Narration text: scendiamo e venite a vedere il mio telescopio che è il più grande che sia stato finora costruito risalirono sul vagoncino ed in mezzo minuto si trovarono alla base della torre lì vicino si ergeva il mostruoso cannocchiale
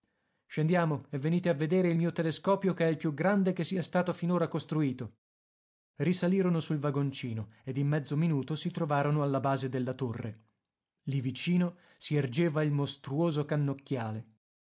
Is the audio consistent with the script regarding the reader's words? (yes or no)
yes